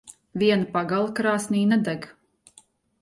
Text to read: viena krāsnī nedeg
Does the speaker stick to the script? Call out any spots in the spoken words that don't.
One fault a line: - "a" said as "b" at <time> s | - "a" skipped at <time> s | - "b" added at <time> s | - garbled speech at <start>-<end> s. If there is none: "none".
- "pagale" added at 0.8 s